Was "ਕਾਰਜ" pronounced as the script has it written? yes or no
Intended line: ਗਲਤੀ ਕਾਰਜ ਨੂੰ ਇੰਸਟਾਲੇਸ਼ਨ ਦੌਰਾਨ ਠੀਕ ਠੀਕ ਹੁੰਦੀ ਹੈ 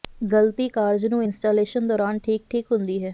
yes